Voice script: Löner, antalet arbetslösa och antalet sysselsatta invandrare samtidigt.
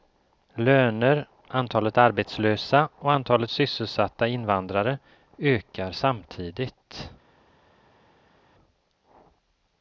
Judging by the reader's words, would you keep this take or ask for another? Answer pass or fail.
fail